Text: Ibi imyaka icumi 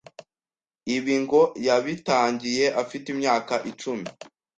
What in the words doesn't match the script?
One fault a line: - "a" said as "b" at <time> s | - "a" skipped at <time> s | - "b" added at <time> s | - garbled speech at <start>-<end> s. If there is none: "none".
- "ngo yabitangiye afite" added at 1.2 s